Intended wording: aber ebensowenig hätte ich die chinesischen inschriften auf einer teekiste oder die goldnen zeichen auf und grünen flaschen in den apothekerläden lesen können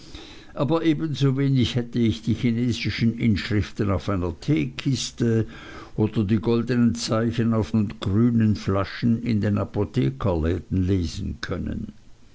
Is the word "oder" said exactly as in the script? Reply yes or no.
yes